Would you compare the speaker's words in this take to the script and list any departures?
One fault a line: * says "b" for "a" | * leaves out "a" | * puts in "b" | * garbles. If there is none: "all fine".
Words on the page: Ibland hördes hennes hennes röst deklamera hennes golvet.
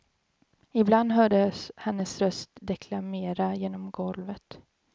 * leaves out "hennes"
* says "genom" for "hennes"